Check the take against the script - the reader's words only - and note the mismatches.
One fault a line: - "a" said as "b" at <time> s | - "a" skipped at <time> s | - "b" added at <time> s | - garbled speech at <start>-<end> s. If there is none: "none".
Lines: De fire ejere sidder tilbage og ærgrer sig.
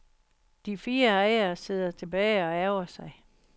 none